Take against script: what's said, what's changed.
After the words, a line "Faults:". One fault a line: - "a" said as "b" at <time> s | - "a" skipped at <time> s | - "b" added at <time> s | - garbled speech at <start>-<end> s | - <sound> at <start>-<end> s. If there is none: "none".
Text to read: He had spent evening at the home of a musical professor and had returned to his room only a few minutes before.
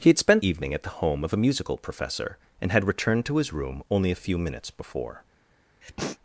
He had spent evening at the home of a musical professor and had returned to his room only a few minutes before.
Faults:
- sniff at 5.8-6.2 s